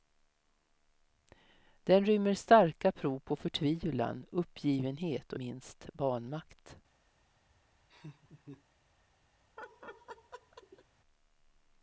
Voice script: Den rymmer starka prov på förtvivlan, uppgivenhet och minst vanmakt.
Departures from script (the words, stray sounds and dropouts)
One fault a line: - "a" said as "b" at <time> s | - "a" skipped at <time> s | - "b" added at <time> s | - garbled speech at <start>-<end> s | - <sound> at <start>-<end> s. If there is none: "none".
- laugh at 7.9-8.6 s
- laugh at 9.6-10.8 s